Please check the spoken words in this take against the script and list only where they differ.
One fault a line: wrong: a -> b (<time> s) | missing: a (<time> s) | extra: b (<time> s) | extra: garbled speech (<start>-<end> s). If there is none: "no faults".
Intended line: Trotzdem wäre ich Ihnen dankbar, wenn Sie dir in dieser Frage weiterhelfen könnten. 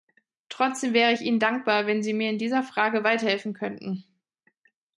wrong: dir -> mir (2.1 s)